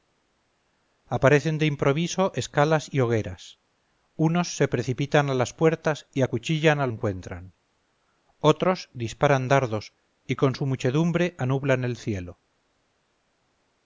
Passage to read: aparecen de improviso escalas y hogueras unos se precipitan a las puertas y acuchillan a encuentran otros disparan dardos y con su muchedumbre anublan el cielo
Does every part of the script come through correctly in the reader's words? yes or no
yes